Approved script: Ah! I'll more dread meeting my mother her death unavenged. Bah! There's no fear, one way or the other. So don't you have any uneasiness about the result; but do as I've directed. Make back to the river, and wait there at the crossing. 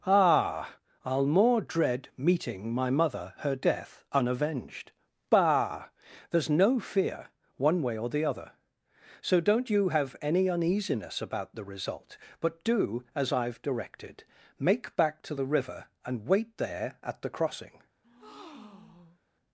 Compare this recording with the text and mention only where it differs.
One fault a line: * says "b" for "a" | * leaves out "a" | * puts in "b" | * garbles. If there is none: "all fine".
all fine